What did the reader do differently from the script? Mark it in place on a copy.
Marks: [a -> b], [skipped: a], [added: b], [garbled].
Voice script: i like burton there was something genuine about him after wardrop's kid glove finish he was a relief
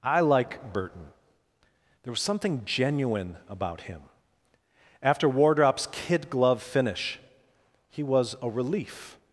i like burton there was something genuine about him after wardrop's kid glove finish he was a relief